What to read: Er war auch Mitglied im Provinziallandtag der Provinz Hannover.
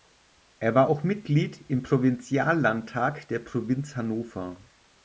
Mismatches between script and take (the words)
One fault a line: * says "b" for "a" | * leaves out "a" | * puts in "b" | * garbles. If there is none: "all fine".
all fine